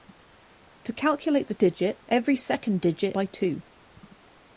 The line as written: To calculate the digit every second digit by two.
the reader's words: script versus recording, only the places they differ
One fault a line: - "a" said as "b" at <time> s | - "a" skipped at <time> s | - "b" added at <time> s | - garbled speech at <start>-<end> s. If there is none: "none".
none